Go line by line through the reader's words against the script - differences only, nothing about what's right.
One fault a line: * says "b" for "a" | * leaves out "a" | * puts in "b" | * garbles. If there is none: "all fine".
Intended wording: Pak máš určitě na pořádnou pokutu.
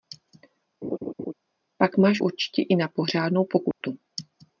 * puts in "i"